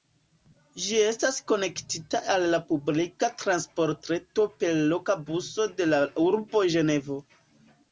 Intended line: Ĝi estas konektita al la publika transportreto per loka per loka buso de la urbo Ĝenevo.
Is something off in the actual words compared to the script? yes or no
yes